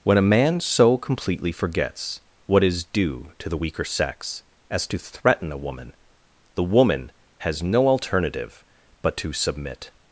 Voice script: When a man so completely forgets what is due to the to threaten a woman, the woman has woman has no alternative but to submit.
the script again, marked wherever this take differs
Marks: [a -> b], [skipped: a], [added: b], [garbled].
When a man so completely forgets what is due to the [added: weaker sex as] to threaten a woman, the woman has [skipped: woman has] no alternative but to submit.